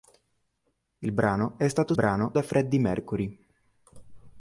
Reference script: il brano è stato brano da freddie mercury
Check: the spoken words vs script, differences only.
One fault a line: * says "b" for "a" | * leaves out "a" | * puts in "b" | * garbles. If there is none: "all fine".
all fine